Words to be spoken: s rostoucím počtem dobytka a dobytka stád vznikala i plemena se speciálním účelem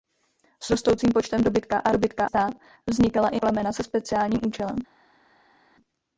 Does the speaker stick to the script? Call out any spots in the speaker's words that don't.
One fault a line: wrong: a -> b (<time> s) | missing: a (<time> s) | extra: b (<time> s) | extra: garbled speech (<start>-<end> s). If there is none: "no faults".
no faults